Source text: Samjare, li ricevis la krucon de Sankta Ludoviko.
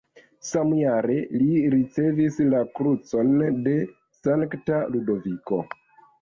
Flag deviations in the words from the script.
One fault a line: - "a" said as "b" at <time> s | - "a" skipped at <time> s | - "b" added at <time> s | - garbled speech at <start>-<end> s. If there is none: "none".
none